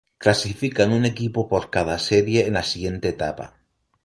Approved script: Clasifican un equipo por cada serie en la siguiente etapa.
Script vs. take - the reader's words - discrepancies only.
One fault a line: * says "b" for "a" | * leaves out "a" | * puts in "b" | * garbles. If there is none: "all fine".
all fine